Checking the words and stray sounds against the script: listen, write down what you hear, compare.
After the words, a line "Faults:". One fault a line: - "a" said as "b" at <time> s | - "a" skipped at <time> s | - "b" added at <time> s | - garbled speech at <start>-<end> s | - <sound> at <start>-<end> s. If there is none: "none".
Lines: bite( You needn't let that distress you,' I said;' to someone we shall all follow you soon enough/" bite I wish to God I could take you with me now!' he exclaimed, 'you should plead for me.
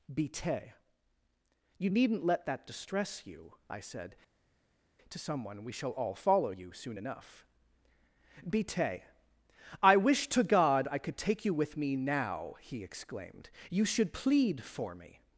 bite( You needn't let that distress you,' I said;' to someone we shall all follow you soon enough/" bite I wish to God I could take you with me now!' he exclaimed, 'you should plead for me.
Faults:
none